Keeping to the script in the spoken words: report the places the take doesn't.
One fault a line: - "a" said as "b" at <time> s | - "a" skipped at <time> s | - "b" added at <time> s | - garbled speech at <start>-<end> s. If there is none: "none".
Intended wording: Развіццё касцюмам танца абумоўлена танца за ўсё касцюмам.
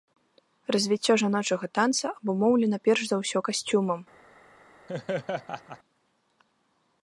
- "касцюмам" said as "жаночага" at 1.2 s
- "танца" said as "перш" at 2.9 s